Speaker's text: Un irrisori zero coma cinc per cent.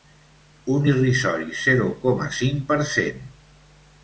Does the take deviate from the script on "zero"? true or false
false